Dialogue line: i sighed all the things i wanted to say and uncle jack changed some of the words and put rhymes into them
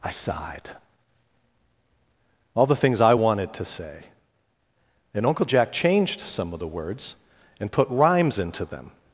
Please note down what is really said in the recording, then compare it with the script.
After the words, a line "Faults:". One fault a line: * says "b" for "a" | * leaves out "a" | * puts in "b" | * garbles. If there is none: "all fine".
i sighed all the things i wanted to say and uncle jack changed some of the words and put rhymes into them
Faults:
all fine